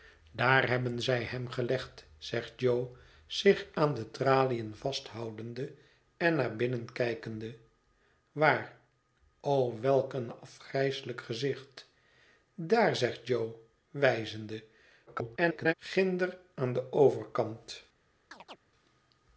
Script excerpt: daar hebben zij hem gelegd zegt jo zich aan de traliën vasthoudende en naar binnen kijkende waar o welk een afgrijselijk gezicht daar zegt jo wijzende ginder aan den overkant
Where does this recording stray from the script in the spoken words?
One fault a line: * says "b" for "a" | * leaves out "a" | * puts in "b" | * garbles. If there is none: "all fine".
* garbles